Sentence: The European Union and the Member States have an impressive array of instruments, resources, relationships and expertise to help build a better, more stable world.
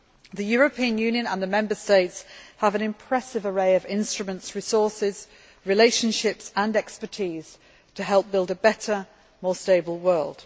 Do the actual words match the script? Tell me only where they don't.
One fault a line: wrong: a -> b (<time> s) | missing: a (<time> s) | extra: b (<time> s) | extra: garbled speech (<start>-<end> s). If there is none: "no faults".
no faults